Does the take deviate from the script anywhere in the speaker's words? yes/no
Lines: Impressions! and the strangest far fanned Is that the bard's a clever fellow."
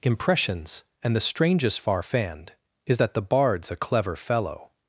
no